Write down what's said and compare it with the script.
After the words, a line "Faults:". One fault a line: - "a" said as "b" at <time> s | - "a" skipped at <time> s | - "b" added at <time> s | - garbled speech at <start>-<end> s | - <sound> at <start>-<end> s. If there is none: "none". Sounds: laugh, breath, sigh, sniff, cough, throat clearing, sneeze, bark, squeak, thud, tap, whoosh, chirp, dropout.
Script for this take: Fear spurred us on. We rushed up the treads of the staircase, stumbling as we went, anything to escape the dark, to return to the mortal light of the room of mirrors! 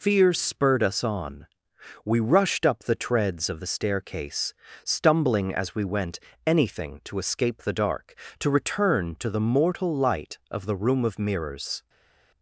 Fear spurred us on. We rushed up the treads of the staircase, stumbling as we went, anything to escape the dark, to return to the mortal light of the room of mirrors!
Faults:
none